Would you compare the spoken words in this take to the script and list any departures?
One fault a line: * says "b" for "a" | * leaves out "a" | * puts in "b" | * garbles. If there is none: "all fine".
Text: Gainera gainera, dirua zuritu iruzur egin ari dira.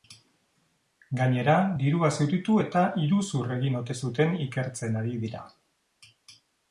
* leaves out "gainera"
* puts in "eta"
* puts in "ote zuten ikertzen"